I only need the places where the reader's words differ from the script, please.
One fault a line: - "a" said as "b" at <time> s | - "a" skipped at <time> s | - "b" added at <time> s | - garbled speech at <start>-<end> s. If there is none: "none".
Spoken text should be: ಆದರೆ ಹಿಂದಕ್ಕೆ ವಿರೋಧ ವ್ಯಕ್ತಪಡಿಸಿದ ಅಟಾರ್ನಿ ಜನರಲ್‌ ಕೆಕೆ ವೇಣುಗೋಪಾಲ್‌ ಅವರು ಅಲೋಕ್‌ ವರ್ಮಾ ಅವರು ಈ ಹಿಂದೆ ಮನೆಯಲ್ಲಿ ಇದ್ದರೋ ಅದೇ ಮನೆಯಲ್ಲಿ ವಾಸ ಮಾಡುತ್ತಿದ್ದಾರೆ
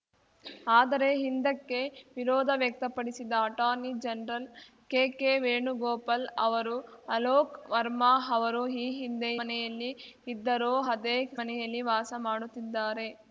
none